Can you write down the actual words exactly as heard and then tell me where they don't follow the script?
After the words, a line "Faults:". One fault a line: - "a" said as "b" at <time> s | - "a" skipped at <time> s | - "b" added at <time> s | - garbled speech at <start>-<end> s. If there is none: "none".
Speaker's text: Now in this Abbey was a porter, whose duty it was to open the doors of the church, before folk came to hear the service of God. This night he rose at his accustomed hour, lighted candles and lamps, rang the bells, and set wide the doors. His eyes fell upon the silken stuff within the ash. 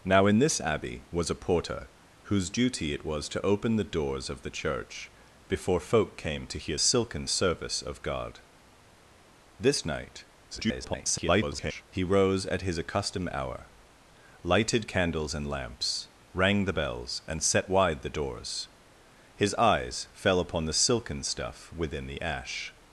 Now in this Abbey was a porter, whose duty it was to open the doors of the church, before folk came to hear silken service of God. This night [garbled] he rose at his accustomed hour, lighted candles and lamps, rang the bells, and set wide the doors. His eyes fell upon the silken stuff within the ash.
Faults:
- "the" said as "silken" at 6.8 s
- garbled speech at 10.5-11.8 s